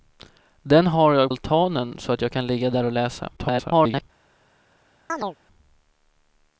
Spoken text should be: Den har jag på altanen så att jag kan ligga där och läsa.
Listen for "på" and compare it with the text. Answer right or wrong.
wrong